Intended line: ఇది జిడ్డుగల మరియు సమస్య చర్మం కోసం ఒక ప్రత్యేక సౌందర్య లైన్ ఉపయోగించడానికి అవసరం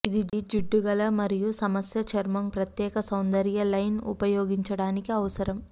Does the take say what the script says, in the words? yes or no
no